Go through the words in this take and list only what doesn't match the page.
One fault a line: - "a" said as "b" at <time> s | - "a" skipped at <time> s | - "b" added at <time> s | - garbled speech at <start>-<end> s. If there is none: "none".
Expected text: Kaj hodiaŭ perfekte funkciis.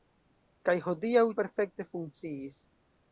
none